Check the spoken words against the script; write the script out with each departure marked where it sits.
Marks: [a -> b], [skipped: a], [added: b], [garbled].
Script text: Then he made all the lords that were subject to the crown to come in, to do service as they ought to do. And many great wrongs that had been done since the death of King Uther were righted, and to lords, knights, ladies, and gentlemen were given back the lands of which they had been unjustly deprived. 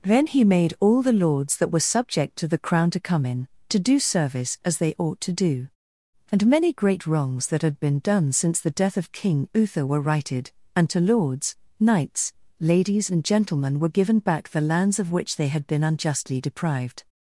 Then he made all the lords that were subject to the crown to come in, to do service as they ought to do. And many great wrongs that had been done since the death of King Uther were righted, and to lords, knights, ladies, and gentlemen were given back the lands of which they had been unjustly deprived.